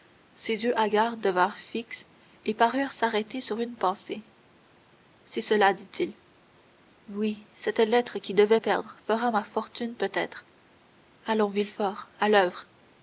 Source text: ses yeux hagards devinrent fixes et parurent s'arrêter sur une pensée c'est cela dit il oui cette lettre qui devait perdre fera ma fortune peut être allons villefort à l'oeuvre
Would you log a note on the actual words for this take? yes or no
no